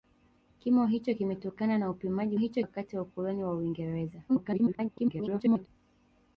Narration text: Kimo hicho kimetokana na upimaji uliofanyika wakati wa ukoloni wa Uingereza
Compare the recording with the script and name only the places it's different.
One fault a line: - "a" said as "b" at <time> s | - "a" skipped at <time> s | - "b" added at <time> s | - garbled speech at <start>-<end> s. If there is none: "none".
- "uliofanyika" said as "hicho" at 2.4 s
- garbled speech at 4.3-5.7 s